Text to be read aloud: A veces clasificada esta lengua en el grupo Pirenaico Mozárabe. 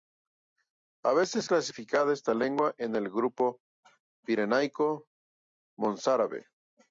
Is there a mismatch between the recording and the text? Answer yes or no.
no